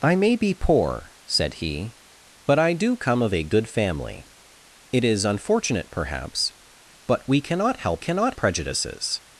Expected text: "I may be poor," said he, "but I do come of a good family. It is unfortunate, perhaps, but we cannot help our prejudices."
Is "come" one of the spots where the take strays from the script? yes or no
no